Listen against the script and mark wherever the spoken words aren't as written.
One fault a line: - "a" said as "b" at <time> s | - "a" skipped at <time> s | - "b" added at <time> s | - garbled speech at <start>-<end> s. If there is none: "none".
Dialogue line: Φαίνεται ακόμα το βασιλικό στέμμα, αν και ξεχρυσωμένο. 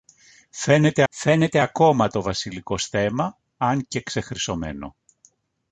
- "φαίνεται" added at 1.1 s